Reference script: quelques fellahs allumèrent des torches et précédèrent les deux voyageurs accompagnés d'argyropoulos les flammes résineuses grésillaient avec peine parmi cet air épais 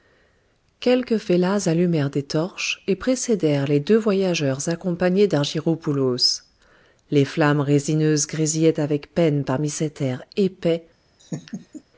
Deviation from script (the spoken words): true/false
false